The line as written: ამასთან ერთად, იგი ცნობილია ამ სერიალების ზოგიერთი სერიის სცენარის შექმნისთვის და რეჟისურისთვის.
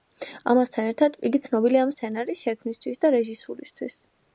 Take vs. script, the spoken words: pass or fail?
fail